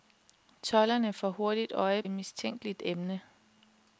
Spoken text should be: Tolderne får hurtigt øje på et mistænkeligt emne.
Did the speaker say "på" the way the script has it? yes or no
no